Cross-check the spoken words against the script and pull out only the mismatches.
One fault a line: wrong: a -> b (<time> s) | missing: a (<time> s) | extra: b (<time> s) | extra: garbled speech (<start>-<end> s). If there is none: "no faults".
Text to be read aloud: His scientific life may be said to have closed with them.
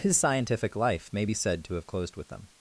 no faults